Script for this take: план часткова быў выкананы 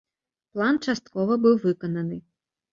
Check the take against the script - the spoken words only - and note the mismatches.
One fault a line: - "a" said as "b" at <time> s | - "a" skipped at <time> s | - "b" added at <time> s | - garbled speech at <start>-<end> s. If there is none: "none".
none